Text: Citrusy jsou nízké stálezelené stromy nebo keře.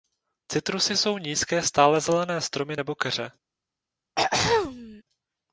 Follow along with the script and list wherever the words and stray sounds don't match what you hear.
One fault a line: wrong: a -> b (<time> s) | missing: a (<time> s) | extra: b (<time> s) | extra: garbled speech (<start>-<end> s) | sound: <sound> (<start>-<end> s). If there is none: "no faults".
sound: throat clearing (4.2-5.0 s)